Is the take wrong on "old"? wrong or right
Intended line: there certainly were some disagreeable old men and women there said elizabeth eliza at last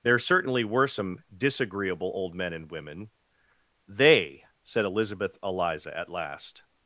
right